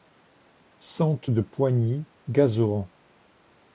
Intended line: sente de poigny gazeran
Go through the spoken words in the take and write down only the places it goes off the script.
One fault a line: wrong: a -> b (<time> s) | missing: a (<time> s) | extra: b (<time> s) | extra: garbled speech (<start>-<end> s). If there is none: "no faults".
no faults